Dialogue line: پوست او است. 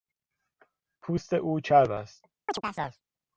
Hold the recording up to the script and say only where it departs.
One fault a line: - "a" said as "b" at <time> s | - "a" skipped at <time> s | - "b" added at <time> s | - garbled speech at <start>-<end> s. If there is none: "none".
- "چرب" added at 1.6 s